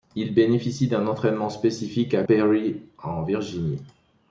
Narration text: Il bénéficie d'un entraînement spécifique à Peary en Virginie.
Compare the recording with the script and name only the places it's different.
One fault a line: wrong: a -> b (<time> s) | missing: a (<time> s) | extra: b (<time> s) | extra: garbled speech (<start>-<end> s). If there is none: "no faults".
no faults